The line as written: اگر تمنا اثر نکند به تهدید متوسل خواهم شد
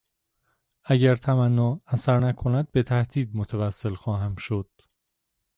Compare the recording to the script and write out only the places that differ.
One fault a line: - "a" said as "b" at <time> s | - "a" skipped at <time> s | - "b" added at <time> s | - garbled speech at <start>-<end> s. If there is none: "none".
none